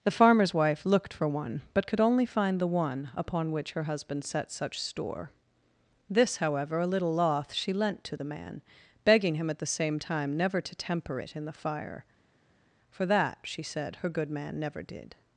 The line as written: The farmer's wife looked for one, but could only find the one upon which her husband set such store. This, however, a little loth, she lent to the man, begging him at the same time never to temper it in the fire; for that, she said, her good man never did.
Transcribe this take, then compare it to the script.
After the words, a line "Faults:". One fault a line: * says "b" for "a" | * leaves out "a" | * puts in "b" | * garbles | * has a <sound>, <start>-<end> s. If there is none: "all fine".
The farmer's wife looked for one, but could only find the one upon which her husband set such store. This, however, a little loth, she lent to the man, begging him at the same time never to temper it in the fire; for that, she said, her good man never did.
Faults:
all fine